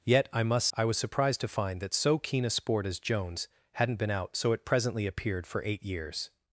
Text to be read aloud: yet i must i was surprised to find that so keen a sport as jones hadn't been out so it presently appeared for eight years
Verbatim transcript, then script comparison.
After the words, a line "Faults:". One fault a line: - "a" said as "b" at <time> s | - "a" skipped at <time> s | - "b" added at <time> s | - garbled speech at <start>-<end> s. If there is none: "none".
yet i must i was surprised to find that so keen a sport as jones hadn't been out so it presently appeared for eight years
Faults:
none